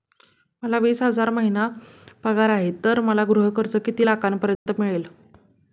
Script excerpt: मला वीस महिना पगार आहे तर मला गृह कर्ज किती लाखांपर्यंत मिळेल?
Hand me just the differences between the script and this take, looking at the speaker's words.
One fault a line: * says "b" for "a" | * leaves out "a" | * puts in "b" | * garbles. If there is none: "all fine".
* puts in "हजार"